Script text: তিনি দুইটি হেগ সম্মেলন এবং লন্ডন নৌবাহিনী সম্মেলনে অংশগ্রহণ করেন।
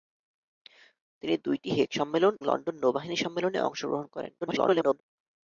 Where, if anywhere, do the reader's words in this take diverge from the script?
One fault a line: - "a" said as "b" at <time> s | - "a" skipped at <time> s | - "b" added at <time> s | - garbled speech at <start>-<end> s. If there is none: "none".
- "এবং" skipped at 2.3 s
- garbled speech at 4.4-5.0 s